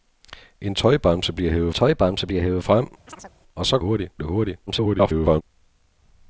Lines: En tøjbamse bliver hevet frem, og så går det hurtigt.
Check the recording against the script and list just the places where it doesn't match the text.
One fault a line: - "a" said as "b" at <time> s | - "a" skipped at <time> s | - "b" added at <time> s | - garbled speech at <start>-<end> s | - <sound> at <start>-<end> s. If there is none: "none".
- "tøjbamse bliver hevet" added at 1.7 s
- chirp at 3.1-3.4 s
- "går" said as "hurtigt" at 3.8 s
- garbled speech at 4.7-5.4 s